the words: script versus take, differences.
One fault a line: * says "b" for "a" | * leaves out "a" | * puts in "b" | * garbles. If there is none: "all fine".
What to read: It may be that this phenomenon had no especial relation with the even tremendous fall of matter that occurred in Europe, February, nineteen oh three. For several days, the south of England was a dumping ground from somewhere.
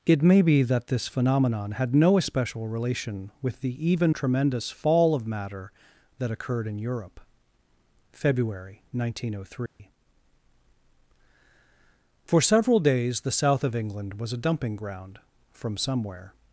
all fine